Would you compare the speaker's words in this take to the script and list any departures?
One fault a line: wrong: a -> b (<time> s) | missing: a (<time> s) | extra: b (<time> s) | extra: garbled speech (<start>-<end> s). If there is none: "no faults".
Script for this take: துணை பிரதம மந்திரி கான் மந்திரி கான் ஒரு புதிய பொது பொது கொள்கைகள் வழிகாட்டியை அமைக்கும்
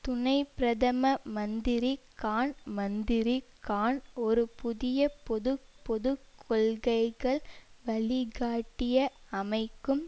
no faults